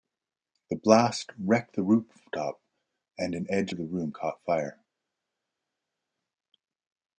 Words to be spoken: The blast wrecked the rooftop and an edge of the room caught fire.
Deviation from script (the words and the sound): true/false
false